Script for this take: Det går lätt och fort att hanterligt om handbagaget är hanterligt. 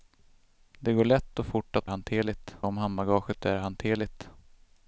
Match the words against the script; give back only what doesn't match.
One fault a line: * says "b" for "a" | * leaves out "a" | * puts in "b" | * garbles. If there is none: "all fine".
all fine